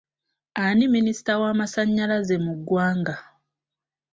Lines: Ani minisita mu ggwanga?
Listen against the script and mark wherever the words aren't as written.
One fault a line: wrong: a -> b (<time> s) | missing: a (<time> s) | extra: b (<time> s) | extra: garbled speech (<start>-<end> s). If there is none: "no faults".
extra: w'amasannyalaze (1.4 s)